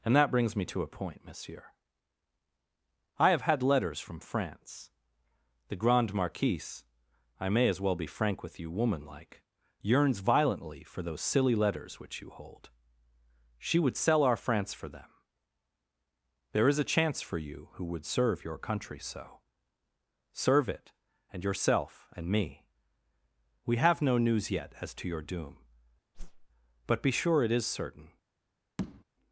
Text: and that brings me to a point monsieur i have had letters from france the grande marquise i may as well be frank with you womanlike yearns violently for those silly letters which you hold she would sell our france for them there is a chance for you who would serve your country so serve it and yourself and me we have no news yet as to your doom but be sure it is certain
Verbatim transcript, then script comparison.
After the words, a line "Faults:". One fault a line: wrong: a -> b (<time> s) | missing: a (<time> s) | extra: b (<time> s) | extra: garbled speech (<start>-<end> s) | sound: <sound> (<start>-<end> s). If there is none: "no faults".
and that brings me to a point monsieur i have had letters from france the grande marquise i may as well be frank with you womanlike yearns violently for those silly letters which you hold she would sell our france for them there is a chance for you who would serve your country so serve it and yourself and me we have no news yet as to your doom but be sure it is certain
Faults:
sound: whoosh (26.1-26.5 s)
sound: tap (28.8-29.0 s)